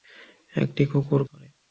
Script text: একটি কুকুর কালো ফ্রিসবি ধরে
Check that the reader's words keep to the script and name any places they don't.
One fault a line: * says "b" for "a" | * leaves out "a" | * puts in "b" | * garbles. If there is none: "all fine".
* leaves out "কালো ফ্রিসবি"